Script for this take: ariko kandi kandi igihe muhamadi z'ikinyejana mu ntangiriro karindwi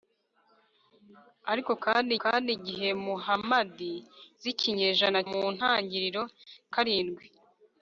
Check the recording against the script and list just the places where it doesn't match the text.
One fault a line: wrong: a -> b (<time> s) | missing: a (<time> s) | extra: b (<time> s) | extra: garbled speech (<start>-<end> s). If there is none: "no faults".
no faults